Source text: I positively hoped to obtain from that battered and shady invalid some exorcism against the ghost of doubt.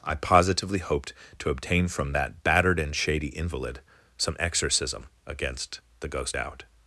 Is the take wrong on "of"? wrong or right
wrong